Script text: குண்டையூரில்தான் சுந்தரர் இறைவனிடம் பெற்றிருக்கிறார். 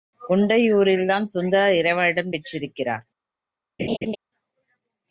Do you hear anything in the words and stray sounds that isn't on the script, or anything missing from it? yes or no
yes